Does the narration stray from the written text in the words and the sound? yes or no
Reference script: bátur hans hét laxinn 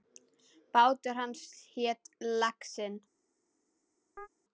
yes